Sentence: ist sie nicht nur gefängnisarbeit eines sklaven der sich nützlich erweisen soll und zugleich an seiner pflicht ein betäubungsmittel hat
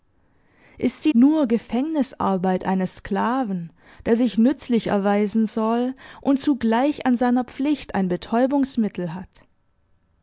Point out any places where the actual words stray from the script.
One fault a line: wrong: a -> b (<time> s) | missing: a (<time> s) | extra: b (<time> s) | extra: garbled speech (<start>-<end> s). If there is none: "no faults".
missing: nicht (1.1 s)